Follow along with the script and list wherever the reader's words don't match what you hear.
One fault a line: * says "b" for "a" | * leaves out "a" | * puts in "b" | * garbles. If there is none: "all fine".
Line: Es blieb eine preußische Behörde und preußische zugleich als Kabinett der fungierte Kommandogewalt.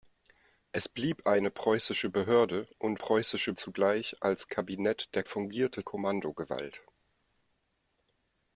all fine